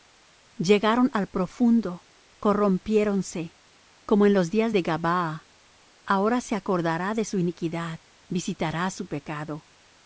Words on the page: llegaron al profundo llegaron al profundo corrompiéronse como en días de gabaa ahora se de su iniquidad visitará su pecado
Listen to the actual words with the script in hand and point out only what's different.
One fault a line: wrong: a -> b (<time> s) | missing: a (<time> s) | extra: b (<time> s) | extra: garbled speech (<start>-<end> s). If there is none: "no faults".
missing: llegaron al profundo (2.0 s)
extra: los (4.3 s)
extra: acordará (6.5 s)